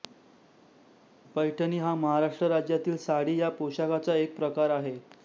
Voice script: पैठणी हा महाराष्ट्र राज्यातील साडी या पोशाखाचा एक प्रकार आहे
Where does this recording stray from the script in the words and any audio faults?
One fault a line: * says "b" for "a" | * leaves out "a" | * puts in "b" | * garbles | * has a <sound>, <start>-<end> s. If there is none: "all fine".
all fine